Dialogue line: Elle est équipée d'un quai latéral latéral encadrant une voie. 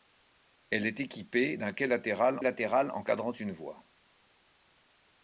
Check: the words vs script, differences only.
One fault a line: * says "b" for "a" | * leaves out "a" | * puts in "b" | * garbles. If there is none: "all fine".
all fine